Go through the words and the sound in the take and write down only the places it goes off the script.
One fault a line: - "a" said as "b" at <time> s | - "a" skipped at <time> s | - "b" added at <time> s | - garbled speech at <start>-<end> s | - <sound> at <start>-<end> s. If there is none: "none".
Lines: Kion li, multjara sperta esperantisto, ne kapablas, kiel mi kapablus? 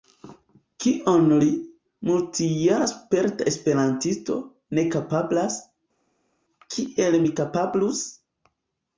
none